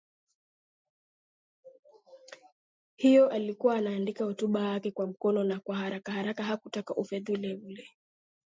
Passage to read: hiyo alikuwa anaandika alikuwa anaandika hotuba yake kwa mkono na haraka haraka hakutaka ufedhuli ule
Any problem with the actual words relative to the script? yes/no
yes